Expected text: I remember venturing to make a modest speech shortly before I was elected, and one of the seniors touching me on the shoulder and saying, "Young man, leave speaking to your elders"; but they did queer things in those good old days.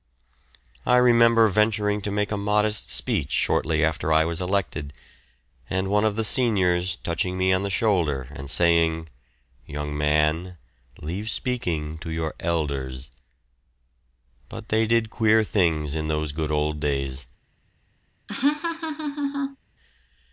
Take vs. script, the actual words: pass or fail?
fail